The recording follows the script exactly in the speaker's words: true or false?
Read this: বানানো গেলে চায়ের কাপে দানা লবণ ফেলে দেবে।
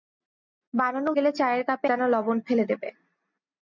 true